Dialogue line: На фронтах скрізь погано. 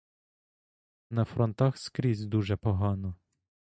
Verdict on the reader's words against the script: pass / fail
fail